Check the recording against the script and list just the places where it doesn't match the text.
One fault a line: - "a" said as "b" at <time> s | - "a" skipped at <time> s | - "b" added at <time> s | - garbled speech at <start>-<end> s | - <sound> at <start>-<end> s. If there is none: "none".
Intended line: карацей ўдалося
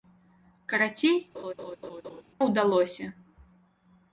- laugh at 1.3-2.2 s